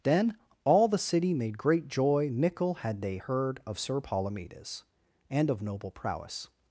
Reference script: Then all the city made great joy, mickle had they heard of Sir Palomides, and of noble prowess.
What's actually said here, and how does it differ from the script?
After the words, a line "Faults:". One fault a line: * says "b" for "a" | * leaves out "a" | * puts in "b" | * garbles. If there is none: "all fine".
Then all the city made great joy, mickle had they heard of Sir Palomides, and of noble prowess.
Faults:
all fine